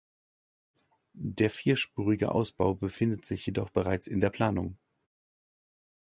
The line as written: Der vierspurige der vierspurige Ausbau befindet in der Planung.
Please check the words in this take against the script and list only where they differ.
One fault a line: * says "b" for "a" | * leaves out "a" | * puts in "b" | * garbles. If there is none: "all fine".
* says "Ausbau befindet sich jedoch bereits" for "der vierspurige Ausbau befindet"